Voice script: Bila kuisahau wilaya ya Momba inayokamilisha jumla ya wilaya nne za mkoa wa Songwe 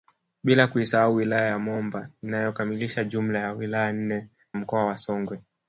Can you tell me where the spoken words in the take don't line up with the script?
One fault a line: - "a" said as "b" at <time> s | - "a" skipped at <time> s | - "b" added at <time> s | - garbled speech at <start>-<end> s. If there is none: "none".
- "za" skipped at 4.3 s